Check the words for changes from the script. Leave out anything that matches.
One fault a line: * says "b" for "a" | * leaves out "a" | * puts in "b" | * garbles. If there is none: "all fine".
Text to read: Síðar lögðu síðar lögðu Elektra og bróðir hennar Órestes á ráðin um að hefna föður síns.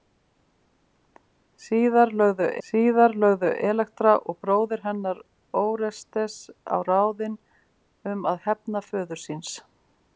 all fine